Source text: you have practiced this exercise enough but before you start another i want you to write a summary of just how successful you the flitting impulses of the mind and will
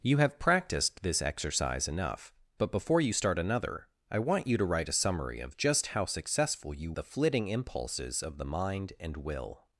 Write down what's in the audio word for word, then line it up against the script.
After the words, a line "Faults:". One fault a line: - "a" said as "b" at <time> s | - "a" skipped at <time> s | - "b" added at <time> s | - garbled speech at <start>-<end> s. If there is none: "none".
you have practiced this exercise enough but before you start another i want you to write a summary of just how successful you the flitting impulses of the mind and will
Faults:
none